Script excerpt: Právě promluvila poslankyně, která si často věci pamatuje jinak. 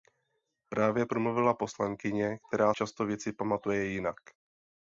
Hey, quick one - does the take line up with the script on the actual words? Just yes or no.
no